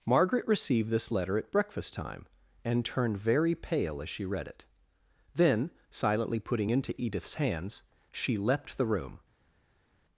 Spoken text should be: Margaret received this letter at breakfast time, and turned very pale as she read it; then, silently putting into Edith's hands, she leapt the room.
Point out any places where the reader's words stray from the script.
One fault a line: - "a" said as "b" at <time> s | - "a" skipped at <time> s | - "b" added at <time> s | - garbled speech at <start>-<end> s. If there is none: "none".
none